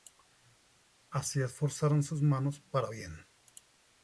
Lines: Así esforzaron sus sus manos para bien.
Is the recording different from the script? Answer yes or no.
yes